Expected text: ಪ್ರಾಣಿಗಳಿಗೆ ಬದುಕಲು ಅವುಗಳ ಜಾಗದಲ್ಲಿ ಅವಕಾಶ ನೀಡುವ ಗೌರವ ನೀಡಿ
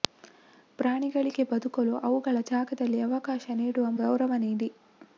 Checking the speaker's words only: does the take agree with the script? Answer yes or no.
yes